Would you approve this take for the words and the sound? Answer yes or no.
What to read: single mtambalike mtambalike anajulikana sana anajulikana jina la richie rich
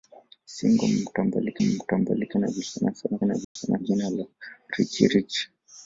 no